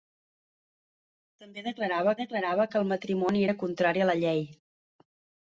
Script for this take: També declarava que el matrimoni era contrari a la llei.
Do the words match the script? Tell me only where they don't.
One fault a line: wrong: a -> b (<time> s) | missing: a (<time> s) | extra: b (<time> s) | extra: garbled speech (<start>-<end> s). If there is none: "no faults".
extra: declarava (2.2 s)